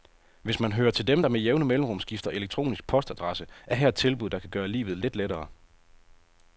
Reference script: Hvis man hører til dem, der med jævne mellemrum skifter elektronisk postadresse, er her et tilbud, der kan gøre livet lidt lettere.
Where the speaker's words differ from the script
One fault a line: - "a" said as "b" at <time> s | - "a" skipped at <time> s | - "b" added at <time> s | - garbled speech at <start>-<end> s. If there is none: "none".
none